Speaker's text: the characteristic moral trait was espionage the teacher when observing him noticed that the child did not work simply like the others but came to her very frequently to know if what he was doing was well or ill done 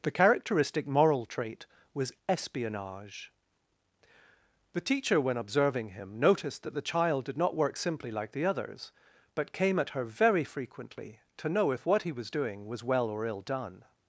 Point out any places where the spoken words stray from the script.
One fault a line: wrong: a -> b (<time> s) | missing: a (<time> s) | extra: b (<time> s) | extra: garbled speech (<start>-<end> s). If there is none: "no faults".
wrong: to -> at (9.8 s)